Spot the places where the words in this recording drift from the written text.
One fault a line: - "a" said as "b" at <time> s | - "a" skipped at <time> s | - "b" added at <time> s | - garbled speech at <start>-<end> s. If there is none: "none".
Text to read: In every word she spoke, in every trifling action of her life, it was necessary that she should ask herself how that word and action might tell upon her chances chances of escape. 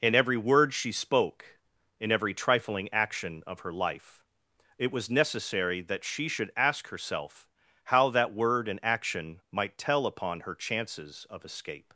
- "chances" skipped at 11.3 s